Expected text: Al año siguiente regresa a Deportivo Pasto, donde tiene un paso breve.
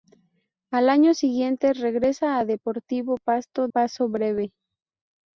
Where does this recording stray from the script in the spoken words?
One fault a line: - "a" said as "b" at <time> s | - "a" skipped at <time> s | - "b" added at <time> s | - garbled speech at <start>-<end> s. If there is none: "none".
- "donde tiene un" skipped at 3.7 s